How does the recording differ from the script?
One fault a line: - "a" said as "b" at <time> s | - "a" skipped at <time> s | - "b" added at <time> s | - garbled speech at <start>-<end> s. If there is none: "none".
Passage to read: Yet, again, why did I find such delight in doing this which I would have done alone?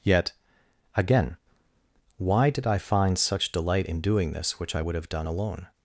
none